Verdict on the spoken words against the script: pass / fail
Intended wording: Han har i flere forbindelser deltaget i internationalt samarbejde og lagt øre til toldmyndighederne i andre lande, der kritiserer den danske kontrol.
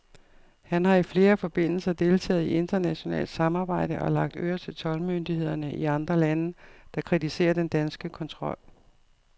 pass